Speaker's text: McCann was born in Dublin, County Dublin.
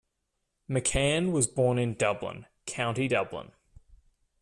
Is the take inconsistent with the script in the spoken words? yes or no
no